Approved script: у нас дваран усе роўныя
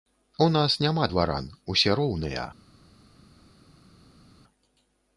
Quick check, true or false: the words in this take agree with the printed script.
false